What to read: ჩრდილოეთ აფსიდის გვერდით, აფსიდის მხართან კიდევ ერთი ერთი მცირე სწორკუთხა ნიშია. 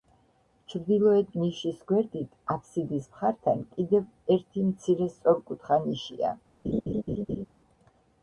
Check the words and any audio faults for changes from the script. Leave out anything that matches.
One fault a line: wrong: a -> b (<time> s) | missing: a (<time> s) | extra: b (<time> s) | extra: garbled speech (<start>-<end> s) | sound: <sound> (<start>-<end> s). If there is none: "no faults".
wrong: აფსიდის -> ნიშის (1.4 s)
missing: ერთი (4.7 s)
sound: laugh (6.6-7.5 s)